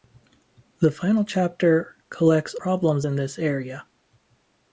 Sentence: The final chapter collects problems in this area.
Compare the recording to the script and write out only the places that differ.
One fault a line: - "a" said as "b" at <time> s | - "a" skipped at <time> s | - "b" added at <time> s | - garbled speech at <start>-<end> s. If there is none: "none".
none